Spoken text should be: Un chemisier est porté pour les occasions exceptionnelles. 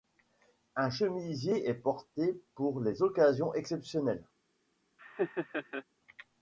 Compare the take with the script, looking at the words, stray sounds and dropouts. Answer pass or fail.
fail